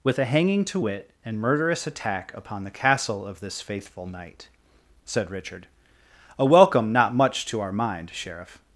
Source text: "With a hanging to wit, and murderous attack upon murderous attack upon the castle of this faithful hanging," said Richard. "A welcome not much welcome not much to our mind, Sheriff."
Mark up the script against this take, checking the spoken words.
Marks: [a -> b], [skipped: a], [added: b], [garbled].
"With a hanging to wit, and murderous attack upon [skipped: murderous attack upon] the castle of this faithful [hanging," -> knight] said Richard. "A welcome not much [skipped: welcome not much] to our mind, Sheriff."